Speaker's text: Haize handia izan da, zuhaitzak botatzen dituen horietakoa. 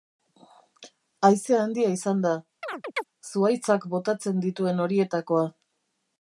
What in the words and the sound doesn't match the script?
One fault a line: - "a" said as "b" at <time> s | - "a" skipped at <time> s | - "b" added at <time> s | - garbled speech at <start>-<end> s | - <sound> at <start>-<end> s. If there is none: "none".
- chirp at 2.6-3.0 s